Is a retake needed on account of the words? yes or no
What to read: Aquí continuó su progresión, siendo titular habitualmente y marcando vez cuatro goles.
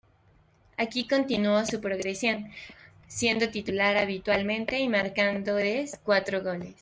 no